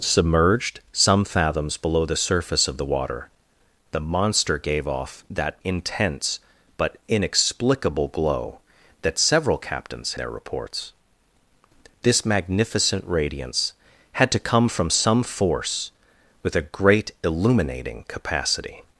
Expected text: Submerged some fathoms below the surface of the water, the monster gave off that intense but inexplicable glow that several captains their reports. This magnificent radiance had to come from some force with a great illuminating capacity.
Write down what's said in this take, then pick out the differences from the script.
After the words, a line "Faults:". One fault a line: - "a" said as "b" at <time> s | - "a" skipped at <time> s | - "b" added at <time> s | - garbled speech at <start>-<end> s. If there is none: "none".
Submerged some fathoms below the surface of the water, the monster gave off that intense but inexplicable glow that several captains their reports. This magnificent radiance had to come from some force with a great illuminating capacity.
Faults:
none